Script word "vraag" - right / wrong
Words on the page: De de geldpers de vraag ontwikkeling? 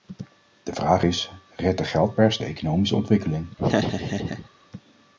wrong